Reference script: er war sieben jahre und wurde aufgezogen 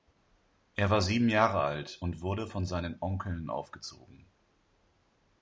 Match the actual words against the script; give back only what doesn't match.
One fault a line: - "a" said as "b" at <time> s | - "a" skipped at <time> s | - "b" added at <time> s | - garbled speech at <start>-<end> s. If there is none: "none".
- "alt" added at 1.6 s
- "von seinen onkeln" added at 2.4 s